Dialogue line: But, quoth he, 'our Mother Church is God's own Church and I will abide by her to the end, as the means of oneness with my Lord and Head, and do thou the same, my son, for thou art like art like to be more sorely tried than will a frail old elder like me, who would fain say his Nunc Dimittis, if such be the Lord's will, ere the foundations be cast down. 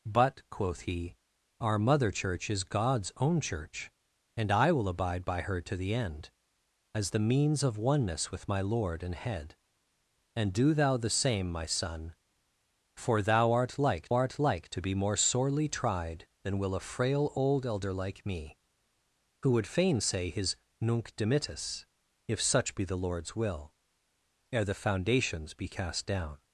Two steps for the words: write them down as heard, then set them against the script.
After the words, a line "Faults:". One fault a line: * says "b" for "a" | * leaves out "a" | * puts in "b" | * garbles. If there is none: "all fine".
But, quoth he, 'our Mother Church is God's own Church and I will abide by her to the end, as the means of oneness with my Lord and Head, and do thou the same, my son, for thou art like art like to be more sorely tried than will a frail old elder like me, who would fain say his Nunc Dimittis, if such be the Lord's will, ere the foundations be cast down.
Faults:
all fine